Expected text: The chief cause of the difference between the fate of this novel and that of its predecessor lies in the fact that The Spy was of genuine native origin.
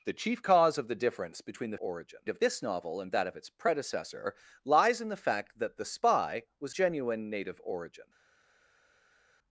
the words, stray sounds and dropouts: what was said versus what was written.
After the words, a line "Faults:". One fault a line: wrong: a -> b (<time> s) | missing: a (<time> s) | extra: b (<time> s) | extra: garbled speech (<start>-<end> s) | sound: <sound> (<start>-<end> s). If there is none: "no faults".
The chief cause of the difference between the origin of this novel and that of its predecessor lies in the fact that The Spy was genuine native origin.
Faults:
wrong: fate -> origin (1.8 s)
missing: of (6.7 s)